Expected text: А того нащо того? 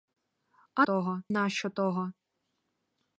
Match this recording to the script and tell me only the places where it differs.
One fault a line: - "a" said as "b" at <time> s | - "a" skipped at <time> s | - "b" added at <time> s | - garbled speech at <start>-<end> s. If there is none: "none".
none